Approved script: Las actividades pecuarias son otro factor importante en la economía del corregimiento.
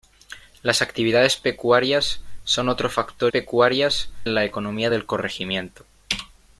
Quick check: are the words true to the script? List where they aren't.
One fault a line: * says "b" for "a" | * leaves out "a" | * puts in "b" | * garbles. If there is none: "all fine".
* says "pecuarias" for "importante"